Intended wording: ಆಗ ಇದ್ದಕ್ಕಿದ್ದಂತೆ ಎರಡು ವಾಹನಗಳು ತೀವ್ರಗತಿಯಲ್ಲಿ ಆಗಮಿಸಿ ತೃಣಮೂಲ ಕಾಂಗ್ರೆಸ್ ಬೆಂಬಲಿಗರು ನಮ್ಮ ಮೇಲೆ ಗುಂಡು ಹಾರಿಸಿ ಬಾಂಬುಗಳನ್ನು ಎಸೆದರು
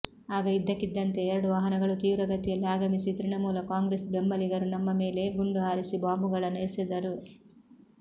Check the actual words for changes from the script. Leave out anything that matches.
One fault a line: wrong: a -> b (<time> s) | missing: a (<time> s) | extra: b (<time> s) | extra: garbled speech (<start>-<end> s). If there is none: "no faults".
no faults